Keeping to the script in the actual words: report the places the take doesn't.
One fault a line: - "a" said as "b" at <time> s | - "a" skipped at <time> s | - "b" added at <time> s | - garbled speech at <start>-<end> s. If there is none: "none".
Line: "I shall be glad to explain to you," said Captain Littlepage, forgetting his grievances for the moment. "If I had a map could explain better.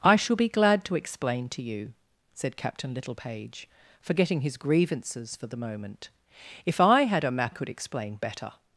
none